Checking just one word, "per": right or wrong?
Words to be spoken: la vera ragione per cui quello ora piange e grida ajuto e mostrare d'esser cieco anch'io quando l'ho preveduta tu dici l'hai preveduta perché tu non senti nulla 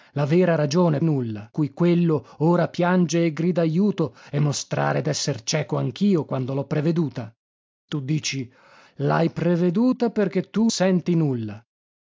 wrong